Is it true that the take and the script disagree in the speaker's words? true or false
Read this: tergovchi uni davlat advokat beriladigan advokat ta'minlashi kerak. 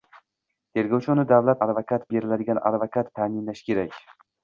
false